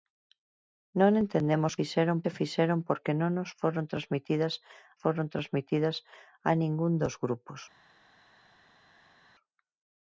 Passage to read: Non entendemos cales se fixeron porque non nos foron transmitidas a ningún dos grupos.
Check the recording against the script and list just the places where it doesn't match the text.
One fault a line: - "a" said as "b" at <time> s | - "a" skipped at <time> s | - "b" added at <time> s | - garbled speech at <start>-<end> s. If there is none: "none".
- "cales" said as "fixeron" at 1.8 s
- "foron transmitidas" added at 5.0 s